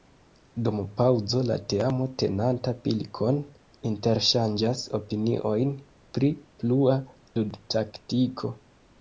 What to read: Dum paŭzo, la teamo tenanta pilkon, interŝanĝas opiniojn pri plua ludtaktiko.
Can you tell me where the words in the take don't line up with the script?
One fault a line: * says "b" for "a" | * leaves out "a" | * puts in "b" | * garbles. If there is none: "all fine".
all fine